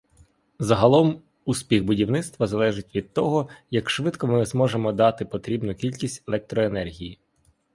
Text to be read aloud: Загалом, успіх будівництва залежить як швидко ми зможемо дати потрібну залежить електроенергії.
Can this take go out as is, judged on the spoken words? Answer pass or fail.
fail